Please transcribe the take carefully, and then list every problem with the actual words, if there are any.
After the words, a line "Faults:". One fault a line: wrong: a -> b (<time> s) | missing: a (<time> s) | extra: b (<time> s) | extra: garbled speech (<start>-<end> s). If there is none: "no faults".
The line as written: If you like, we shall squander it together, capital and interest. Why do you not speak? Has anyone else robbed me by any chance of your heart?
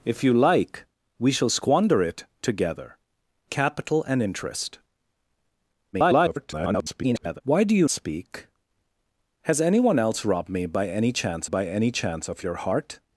If you like, we shall squander it together, capital and interest. [garbled] Why do you speak? Has anyone else robbed me by any chance by any chance of your heart?
Faults:
extra: garbled speech (5.9-7.4 s)
missing: not (7.9 s)
extra: by any chance (11.4 s)